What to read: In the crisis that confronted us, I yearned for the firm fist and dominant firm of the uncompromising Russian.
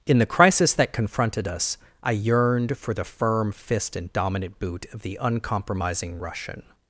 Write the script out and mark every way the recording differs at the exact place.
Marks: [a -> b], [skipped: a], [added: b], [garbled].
In the crisis that confronted us, I yearned for the firm fist and dominant [firm -> boot] of the uncompromising Russian.